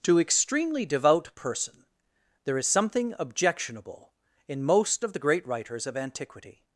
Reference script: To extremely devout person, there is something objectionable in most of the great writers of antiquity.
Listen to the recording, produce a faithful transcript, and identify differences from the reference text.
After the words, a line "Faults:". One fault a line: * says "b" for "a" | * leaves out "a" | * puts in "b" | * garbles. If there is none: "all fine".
To extremely devout person, there is something objectionable in most of the great writers of antiquity.
Faults:
all fine